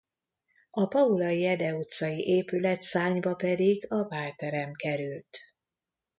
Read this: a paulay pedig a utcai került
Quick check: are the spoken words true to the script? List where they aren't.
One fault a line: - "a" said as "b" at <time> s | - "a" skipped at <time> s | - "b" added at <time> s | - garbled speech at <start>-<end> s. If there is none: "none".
- "ede utcai épületszárnyba" added at 1.4 s
- "utcai" said as "bálterem" at 4.0 s